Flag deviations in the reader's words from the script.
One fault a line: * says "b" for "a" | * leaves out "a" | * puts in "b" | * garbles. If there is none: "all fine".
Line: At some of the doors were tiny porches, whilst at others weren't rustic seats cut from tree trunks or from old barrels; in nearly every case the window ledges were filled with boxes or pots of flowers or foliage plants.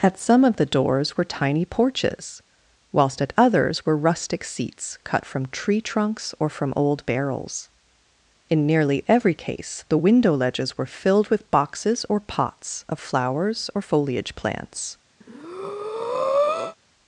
* says "were" for "weren't"